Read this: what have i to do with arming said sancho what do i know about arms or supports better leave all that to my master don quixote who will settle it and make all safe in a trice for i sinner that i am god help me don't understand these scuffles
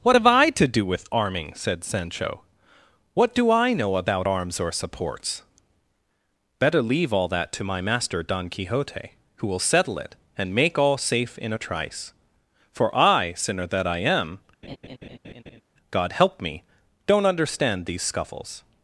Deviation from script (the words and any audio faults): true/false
true